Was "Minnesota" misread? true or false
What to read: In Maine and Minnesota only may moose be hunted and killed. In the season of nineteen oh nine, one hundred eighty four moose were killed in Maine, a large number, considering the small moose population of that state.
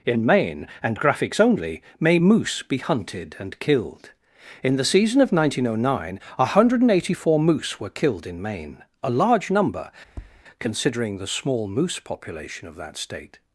true